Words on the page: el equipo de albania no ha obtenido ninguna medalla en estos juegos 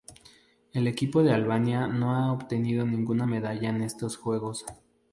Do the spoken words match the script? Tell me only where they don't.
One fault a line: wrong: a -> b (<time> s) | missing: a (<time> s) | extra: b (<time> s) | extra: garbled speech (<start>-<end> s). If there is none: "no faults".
no faults